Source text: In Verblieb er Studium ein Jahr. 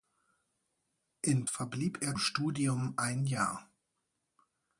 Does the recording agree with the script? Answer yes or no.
yes